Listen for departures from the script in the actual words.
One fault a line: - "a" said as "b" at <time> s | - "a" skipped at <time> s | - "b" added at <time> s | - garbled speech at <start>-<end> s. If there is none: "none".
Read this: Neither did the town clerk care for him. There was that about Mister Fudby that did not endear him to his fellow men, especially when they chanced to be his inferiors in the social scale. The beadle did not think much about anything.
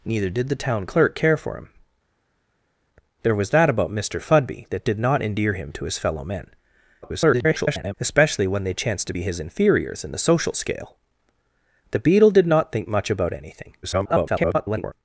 - garbled speech at 7.0-7.9 s
- garbled speech at 13.8-14.9 s